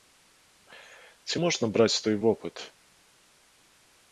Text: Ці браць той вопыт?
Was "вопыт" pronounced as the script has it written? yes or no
yes